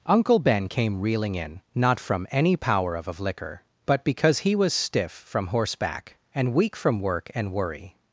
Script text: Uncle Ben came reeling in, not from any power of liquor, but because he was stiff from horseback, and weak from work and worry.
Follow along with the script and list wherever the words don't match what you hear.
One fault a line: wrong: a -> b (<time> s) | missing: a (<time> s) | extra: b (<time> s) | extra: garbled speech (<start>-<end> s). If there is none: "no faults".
extra: of (3.1 s)